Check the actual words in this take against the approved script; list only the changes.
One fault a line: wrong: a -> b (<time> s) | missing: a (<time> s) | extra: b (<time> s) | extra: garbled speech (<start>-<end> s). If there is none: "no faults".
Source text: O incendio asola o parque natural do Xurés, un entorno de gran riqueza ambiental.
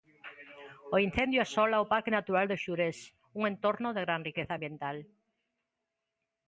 no faults